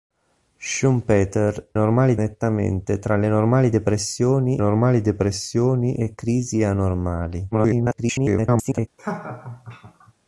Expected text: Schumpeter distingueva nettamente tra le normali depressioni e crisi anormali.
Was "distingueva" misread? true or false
true